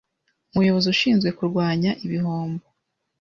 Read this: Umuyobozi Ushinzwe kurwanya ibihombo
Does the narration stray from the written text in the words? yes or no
no